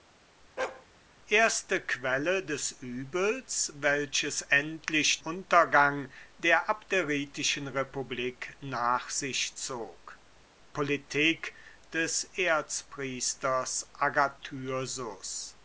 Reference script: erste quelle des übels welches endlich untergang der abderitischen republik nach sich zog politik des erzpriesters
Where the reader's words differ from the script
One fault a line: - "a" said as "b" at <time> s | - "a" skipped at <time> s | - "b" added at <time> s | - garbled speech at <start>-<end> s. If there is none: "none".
none